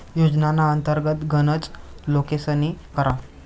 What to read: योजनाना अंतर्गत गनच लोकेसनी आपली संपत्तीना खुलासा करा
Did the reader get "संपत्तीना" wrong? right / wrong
wrong